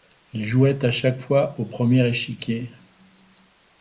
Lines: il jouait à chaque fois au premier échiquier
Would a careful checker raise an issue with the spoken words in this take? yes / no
no